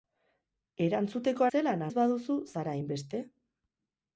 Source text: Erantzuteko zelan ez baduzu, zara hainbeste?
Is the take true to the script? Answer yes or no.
yes